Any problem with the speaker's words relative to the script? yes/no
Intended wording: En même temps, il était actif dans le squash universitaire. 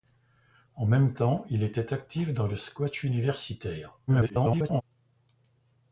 yes